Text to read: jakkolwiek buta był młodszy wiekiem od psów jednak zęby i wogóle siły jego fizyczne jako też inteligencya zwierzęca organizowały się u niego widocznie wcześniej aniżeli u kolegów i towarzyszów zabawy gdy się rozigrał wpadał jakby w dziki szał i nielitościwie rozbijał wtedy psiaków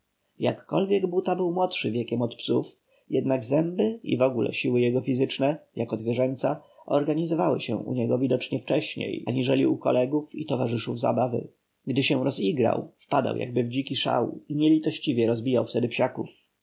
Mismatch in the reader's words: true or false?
true